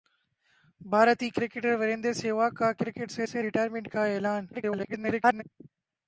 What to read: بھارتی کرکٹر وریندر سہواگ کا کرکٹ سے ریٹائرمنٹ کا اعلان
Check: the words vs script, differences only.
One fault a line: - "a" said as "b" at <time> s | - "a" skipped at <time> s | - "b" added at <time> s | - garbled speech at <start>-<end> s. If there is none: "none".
- "سے" added at 3.3 s
- garbled speech at 4.5-5.4 s